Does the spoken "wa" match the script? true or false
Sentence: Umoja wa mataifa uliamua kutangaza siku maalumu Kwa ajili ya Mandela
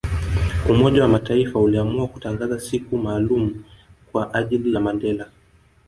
true